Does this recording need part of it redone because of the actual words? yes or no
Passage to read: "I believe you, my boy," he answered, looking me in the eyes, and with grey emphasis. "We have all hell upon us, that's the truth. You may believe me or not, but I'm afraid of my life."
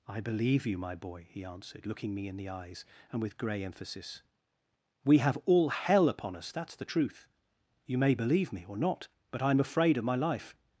no